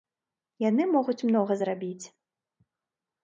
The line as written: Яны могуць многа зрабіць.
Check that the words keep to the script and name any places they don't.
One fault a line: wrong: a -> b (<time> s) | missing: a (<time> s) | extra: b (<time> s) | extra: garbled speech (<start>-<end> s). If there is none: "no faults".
no faults